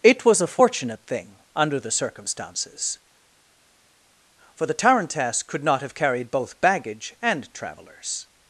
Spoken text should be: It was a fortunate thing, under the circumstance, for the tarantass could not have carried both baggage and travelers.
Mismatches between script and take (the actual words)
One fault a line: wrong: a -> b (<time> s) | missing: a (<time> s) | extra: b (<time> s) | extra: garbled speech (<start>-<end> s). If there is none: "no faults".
wrong: circumstance -> circumstances (1.9 s)